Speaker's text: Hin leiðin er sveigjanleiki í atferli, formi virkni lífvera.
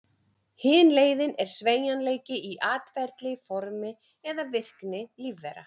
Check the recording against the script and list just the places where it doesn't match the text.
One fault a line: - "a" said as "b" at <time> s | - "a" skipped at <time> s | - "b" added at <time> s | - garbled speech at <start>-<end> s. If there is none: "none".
- "eða" added at 4.3 s